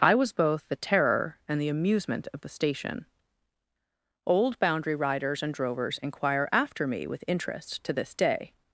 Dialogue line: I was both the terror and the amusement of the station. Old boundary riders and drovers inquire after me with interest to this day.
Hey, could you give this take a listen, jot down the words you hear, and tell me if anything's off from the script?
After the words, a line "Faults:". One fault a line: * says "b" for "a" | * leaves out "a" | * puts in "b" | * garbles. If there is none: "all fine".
I was both the terror and the amusement of the station. Old boundary riders and drovers inquire after me with interest to this day.
Faults:
all fine